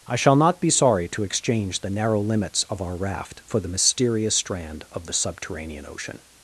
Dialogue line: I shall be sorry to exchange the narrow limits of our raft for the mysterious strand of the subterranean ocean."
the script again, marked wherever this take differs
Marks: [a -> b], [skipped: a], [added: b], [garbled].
I shall [added: not] be sorry to exchange the narrow limits of our raft for the mysterious strand of the subterranean ocean."